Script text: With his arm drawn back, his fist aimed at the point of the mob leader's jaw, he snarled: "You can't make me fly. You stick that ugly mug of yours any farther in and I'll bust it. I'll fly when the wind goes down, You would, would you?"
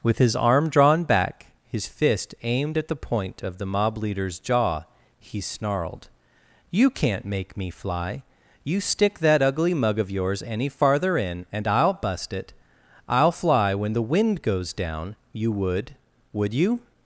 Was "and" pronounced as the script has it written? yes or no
yes